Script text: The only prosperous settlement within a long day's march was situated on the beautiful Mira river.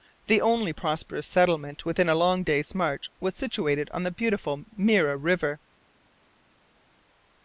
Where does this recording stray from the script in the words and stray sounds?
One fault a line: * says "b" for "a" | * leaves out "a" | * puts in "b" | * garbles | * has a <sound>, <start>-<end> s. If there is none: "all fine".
all fine